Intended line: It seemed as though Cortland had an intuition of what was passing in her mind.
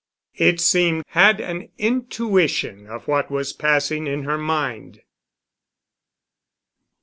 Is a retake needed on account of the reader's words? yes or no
yes